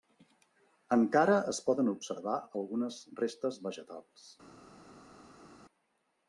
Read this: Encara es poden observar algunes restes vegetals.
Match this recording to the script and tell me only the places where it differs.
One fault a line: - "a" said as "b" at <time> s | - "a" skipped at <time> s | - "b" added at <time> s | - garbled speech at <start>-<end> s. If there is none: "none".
none